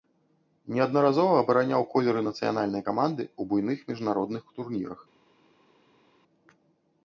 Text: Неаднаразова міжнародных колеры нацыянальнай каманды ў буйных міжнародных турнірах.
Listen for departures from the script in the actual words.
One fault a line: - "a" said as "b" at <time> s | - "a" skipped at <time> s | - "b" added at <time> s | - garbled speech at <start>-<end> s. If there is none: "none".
- "міжнародных" said as "абараняў" at 1.4 s